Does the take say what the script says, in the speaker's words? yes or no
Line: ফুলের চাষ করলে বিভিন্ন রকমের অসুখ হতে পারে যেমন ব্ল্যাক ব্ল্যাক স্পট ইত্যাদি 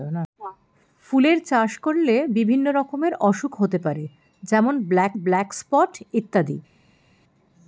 yes